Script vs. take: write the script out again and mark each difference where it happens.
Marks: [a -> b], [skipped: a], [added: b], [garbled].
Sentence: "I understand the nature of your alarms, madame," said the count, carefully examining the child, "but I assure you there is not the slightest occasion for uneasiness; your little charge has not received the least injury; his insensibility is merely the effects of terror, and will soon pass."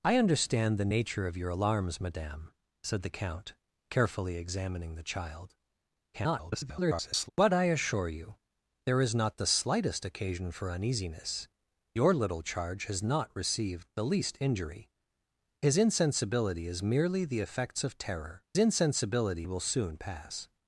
"I understand the nature of your alarms, madame," said the count, carefully examining the child, [garbled] "but I assure you there is not the slightest occasion for uneasiness; your little charge has not received the least injury; his insensibility is merely the effects of terror, [and -> insensibility] will soon pass."